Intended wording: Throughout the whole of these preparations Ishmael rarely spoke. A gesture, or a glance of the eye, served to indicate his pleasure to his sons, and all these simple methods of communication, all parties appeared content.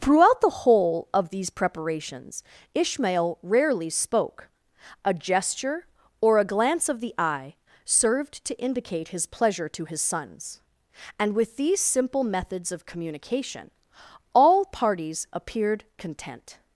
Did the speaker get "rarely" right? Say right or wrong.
right